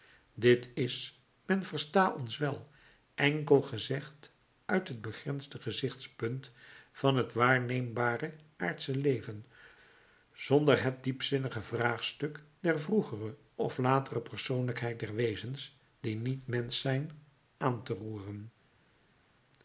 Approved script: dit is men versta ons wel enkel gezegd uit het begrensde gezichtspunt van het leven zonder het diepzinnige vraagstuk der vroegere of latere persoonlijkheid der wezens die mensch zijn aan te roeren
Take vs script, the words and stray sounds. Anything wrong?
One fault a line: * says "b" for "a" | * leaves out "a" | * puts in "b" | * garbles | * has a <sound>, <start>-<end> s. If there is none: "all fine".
* puts in "waarneembare aardsche"
* puts in "niet"